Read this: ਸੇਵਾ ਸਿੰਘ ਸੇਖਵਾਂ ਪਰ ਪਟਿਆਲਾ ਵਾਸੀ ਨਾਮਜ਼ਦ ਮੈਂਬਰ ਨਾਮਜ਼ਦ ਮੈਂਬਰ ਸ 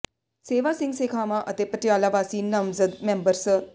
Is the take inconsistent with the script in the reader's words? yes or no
yes